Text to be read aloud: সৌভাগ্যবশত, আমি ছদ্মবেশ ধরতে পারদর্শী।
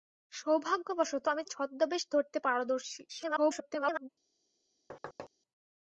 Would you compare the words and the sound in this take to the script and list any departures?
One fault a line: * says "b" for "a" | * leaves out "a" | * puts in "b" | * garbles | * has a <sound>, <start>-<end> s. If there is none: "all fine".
* garbles
* has a thud, 4.9-5.3 s